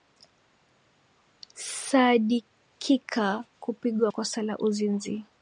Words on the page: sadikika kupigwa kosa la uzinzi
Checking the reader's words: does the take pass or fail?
pass